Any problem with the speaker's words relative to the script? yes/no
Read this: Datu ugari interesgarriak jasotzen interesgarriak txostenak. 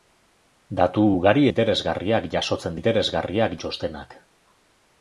no